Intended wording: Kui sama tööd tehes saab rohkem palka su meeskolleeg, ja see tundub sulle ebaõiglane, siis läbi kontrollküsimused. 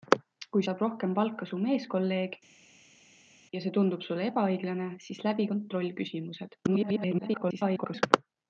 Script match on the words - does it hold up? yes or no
no